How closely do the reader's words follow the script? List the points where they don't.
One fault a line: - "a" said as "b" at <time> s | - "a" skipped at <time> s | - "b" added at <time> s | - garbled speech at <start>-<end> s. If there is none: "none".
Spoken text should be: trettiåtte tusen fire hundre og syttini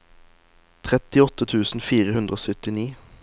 none